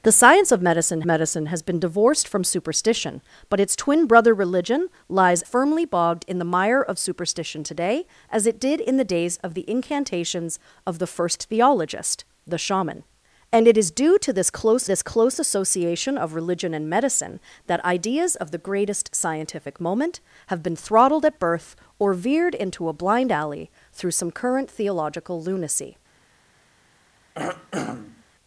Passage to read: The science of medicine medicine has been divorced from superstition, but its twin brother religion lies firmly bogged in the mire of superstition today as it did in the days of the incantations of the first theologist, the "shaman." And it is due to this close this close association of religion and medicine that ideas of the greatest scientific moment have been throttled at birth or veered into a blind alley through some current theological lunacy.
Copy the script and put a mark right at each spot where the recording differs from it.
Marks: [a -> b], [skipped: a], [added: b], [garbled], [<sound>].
The science of medicine medicine has been divorced from superstition, but its twin brother religion lies firmly bogged in the mire of superstition today as it did in the days of the incantations of the first theologist, the "shaman." And it is due to this close this close association of religion and medicine that ideas of the greatest scientific moment have been throttled at birth or veered into a blind alley through some current theological lunacy. [throat clearing]